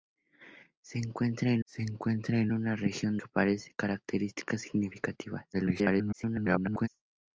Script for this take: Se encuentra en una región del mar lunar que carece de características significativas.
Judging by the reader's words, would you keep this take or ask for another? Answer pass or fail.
fail